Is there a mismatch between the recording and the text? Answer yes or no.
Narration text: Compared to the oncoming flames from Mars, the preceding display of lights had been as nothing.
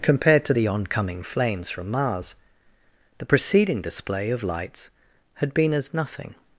no